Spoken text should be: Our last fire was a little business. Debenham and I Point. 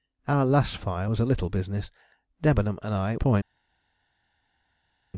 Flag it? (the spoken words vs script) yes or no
no